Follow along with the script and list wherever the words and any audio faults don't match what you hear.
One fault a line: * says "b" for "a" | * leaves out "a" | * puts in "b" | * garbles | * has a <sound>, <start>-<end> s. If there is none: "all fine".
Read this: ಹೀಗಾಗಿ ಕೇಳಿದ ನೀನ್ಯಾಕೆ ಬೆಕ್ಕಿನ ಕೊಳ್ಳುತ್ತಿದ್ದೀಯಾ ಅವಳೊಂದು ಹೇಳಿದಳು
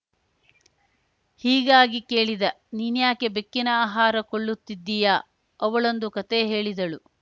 * puts in "ಆಹಾರ"
* puts in "ಕತೆ"